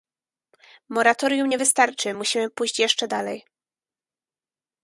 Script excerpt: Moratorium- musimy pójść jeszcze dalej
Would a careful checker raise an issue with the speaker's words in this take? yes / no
yes